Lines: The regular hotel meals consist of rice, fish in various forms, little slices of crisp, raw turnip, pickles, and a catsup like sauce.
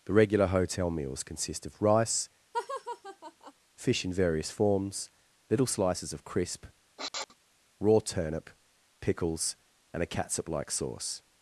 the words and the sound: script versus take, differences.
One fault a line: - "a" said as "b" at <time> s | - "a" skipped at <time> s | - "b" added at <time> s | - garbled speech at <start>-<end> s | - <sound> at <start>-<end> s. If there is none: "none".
- laugh at 2.5-3.5 s
- sniff at 7.0-7.4 s